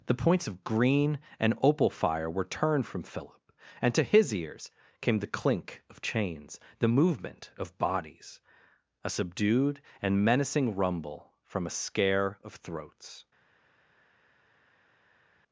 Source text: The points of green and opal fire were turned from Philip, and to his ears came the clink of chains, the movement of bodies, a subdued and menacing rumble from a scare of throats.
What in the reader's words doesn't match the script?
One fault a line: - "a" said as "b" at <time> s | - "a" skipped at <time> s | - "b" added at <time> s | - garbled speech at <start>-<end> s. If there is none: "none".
none